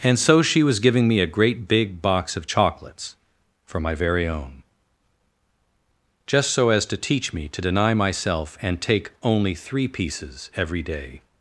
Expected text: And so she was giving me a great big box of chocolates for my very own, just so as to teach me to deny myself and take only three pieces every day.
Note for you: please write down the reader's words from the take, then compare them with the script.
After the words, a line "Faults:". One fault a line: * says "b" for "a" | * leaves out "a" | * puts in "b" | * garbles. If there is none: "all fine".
And so she was giving me a great big box of chocolates for my very own, just so as to teach me to deny myself and take only three pieces every day.
Faults:
all fine